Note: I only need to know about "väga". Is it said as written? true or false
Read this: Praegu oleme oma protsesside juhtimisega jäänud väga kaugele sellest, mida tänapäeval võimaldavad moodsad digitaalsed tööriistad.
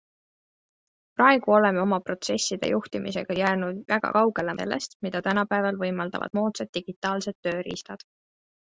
true